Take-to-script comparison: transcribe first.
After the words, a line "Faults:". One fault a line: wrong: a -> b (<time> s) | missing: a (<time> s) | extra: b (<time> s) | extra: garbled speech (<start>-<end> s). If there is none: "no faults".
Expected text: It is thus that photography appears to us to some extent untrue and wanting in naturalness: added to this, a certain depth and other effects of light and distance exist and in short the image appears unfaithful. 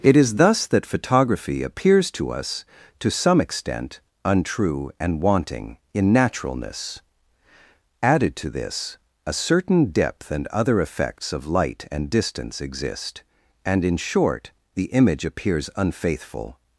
It is thus that photography appears to us to some extent untrue and wanting in naturalness: added to this, a certain depth and other effects of light and distance exist and in short the image appears unfaithful.
Faults:
no faults